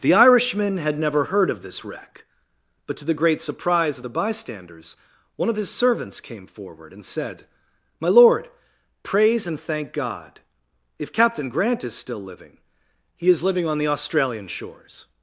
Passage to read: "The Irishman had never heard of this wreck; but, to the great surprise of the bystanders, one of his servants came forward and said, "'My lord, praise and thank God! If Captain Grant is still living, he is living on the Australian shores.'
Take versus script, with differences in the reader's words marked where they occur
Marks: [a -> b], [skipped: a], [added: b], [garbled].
"The Irishman had never heard of this wreck; but, to the great surprise of the bystanders, one of his servants came forward and said, "'My lord, praise and thank God! If Captain Grant is still living, he is living on the Australian shores.'